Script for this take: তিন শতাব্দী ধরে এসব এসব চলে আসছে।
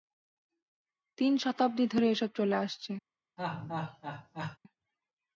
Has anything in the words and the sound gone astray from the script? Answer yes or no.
yes